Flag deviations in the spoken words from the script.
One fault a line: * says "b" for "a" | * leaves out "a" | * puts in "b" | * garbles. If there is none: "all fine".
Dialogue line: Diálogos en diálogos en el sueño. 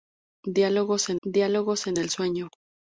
all fine